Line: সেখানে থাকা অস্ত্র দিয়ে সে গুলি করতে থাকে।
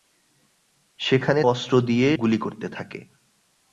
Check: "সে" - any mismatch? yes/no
yes